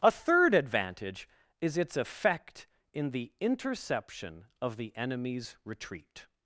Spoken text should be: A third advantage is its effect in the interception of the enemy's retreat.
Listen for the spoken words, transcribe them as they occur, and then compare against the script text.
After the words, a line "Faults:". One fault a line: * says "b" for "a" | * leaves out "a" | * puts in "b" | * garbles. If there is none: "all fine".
A third advantage is its effect in the interception of the enemy's retreat.
Faults:
all fine